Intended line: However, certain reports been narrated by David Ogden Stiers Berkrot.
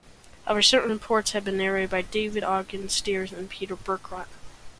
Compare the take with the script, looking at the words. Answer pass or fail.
fail